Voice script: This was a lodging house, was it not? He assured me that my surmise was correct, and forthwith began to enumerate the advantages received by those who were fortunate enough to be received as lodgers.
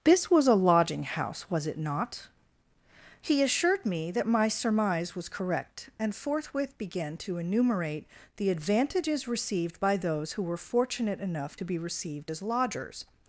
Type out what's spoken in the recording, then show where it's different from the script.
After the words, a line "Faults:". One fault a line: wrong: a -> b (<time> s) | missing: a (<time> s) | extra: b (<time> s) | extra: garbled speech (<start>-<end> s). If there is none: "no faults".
This was a lodging house, was it not? He assured me that my surmise was correct, and forthwith began to enumerate the advantages received by those who were fortunate enough to be received as lodgers.
Faults:
no faults